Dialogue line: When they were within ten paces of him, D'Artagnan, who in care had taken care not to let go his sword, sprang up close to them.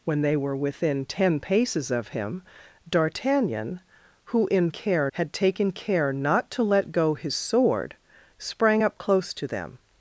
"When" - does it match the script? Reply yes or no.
yes